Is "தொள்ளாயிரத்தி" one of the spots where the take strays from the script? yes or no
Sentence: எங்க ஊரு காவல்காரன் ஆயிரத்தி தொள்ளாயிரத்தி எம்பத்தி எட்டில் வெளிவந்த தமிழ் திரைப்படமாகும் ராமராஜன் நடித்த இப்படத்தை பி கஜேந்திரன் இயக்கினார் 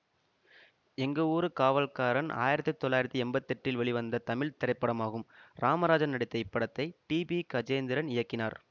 no